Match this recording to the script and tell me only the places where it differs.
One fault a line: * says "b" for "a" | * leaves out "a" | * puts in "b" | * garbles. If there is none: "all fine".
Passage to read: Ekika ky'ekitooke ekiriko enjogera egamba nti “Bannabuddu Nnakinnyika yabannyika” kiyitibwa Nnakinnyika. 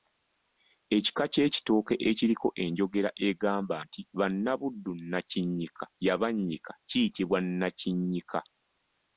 all fine